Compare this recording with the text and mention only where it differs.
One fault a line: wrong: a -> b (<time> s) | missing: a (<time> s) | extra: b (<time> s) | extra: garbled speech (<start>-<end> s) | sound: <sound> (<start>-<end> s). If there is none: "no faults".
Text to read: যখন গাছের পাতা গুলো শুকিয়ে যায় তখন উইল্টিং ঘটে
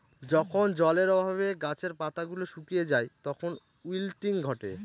extra: জলের অভাবে (0.7 s)